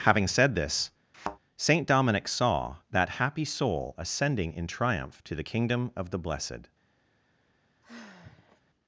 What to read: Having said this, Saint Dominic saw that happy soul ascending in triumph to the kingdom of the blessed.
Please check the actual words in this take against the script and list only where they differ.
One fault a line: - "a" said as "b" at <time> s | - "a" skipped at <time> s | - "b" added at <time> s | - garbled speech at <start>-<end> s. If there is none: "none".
none